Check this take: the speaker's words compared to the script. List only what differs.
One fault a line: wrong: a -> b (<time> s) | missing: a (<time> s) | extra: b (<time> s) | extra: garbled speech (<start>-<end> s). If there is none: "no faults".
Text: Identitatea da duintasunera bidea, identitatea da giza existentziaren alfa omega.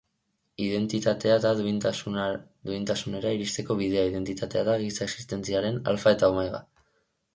extra: iristeko (3.4 s)
extra: eta (6.2 s)